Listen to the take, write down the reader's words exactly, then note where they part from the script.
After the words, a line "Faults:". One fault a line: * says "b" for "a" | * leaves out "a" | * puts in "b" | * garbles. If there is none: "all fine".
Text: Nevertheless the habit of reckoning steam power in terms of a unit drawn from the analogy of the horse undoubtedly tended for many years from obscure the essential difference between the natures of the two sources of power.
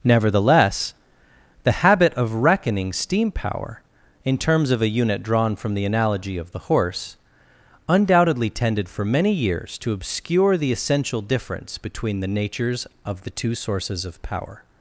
Nevertheless the habit of reckoning steam power in terms of a unit drawn from the analogy of the horse undoubtedly tended for many years to obscure the essential difference between the natures of the two sources of power.
Faults:
* says "to" for "from"